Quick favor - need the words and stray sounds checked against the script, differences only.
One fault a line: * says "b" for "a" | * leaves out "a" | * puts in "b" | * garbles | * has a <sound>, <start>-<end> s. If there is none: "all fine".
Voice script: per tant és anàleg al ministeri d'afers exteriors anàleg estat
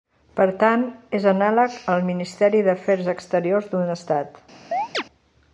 * says "d'un" for "anàleg"
* has a chirp, 4.7-5.0 s